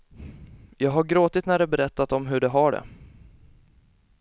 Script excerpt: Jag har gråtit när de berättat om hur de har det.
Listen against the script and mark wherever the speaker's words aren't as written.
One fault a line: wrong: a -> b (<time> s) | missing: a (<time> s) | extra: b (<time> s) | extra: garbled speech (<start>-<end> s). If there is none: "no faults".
no faults